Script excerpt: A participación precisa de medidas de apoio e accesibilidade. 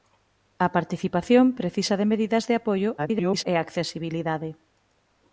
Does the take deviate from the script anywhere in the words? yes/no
yes